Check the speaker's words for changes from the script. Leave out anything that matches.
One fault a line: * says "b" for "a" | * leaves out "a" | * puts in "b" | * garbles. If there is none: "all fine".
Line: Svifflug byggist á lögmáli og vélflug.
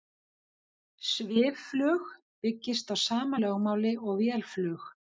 * puts in "sama"